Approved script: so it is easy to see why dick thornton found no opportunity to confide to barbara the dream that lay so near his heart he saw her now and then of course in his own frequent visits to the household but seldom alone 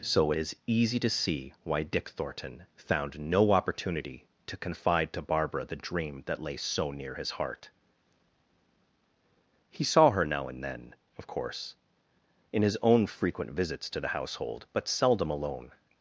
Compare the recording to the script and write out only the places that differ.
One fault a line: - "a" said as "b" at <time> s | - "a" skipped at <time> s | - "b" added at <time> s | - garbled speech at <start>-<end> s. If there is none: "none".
none